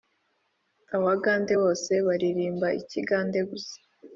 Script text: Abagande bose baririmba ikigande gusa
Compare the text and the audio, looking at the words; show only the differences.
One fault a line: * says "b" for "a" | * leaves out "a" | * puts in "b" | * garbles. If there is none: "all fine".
all fine